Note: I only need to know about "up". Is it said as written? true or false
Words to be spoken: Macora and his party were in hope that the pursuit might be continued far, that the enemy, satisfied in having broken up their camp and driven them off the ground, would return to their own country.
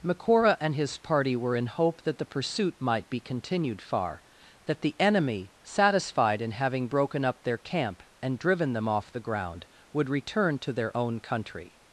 true